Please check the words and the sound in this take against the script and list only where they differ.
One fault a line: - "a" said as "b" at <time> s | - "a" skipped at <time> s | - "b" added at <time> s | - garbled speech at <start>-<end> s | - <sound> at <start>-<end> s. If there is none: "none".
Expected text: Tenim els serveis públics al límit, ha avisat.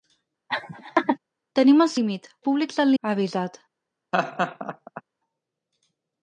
- laugh at 0.5-1.2 s
- "serveis" said as "límit" at 2.0 s
- "límit" skipped at 2.9 s
- laugh at 4.1-5.0 s